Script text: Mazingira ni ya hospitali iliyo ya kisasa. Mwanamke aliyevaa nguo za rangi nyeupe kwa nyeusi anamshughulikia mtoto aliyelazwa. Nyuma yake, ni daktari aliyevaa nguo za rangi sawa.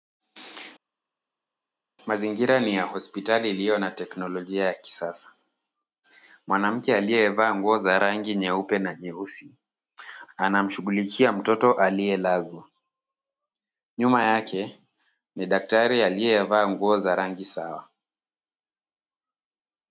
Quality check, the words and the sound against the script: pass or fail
fail